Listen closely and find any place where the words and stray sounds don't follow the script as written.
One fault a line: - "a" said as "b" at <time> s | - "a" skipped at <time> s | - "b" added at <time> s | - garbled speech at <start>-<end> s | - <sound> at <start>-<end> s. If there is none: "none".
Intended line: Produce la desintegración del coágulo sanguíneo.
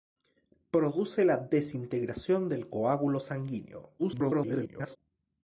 - garbled speech at 4.0-5.0 s